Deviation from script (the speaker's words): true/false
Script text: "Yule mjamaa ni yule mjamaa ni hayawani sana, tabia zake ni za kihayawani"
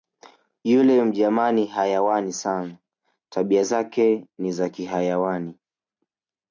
true